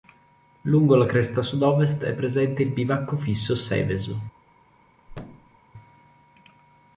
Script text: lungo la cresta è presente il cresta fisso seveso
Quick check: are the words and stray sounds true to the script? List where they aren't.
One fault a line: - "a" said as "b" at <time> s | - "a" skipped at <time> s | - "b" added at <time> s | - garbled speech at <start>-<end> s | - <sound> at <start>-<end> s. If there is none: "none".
- "sud ovest" added at 1.4 s
- "cresta" said as "bivacco" at 2.7 s
- thud at 5.1-5.6 s